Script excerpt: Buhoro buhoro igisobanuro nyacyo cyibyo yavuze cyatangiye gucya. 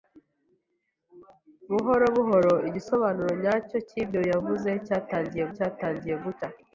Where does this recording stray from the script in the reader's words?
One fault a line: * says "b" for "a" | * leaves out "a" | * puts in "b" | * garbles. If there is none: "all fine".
* puts in "cyatangiye"